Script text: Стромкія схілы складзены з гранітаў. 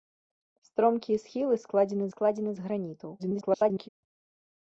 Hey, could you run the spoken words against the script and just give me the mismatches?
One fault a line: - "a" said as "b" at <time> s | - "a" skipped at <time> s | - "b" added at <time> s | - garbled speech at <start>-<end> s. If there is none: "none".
- "складзены" added at 2.1 s
- garbled speech at 3.2-3.9 s